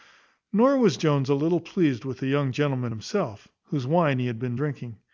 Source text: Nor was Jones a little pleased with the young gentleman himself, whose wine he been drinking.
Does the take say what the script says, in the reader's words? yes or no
no